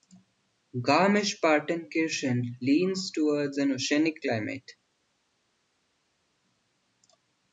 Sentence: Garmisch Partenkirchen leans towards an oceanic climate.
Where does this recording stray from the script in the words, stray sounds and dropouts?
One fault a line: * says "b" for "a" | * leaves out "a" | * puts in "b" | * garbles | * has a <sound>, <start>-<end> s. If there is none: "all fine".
all fine